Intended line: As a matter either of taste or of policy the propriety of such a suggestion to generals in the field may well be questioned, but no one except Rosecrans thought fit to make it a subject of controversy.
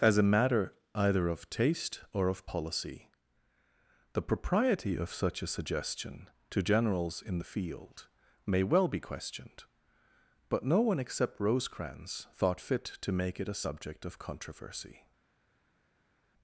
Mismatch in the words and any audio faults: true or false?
false